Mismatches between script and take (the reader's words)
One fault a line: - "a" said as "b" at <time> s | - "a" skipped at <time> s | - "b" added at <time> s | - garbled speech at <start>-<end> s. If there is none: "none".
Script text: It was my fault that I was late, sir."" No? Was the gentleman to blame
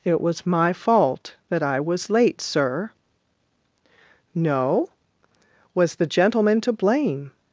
none